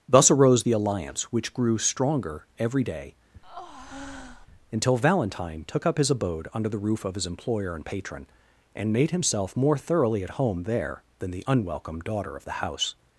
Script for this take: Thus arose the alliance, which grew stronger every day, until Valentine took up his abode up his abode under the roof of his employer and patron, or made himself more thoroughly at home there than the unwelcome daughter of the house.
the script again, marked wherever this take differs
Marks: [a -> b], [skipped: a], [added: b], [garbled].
Thus arose the alliance, which grew stronger every day, until Valentine took up his abode [skipped: up his abode] under the roof of his employer and patron, [or -> and] made himself more thoroughly at home there than the unwelcome daughter of the house.